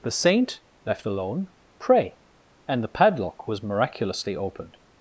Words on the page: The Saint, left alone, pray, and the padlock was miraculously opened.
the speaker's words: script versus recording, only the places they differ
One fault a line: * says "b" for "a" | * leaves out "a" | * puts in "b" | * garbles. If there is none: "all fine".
all fine